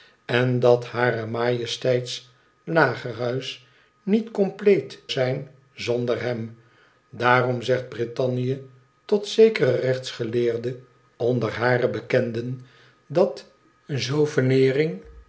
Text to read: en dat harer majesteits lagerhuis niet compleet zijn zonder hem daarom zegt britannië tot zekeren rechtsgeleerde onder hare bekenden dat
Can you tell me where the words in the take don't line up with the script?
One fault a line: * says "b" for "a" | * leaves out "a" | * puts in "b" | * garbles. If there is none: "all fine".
all fine